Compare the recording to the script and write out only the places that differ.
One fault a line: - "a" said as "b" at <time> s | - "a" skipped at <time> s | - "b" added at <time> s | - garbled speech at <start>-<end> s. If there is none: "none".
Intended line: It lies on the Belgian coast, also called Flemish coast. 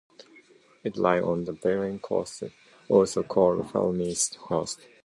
none